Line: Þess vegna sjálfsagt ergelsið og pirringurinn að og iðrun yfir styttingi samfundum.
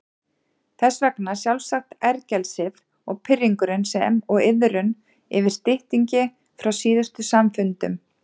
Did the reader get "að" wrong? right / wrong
wrong